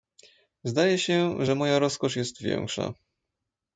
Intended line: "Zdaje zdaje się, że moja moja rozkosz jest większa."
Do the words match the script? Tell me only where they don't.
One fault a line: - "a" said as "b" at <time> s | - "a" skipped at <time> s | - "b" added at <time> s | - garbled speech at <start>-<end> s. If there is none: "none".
- "zdaje" skipped at 1.0 s
- "moja" skipped at 1.8 s